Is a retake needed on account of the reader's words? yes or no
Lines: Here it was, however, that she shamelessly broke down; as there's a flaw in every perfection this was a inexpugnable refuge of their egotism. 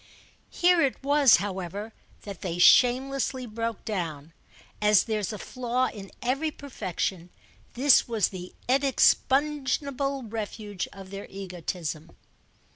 yes